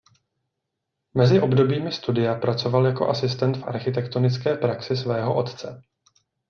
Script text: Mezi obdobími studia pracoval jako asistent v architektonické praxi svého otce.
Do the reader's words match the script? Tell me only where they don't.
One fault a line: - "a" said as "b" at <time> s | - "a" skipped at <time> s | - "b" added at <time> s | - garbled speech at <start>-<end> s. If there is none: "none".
none